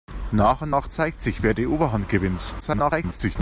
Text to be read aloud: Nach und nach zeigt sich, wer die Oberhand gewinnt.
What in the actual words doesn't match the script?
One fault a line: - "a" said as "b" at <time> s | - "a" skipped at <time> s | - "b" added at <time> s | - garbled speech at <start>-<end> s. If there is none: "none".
- garbled speech at 2.6-3.4 s